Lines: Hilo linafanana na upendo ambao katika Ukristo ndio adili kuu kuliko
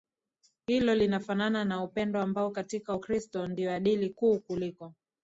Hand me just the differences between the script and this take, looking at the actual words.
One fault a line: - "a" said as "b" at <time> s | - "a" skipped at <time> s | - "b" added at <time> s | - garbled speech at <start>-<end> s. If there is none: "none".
none